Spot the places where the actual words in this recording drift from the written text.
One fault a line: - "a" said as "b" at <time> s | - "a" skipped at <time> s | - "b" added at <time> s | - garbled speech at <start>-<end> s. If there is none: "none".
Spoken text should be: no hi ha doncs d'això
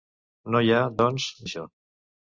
none